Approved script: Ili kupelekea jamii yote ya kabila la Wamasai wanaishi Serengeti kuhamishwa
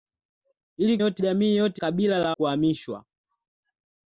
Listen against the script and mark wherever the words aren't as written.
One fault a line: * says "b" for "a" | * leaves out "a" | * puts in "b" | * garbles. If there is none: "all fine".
* says "yote" for "kupelekea"
* leaves out "ya"
* leaves out "Wamasai wanaishi Serengeti"